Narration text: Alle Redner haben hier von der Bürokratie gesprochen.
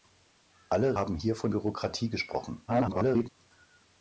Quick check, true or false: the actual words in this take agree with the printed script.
false